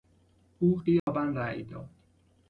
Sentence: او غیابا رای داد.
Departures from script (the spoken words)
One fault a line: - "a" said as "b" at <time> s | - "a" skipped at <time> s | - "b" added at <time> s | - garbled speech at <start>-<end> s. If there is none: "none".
none